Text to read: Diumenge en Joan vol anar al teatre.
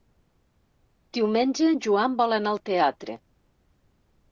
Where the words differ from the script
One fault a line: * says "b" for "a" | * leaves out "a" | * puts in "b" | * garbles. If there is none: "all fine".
all fine